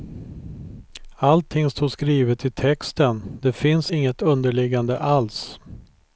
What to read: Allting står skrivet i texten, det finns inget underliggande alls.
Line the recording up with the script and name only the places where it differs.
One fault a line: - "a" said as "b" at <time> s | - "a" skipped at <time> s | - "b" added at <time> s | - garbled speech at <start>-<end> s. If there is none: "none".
none